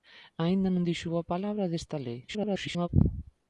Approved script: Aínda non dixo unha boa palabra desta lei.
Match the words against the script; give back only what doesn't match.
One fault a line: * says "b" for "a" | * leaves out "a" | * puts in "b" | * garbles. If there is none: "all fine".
* leaves out "unha"
* garbles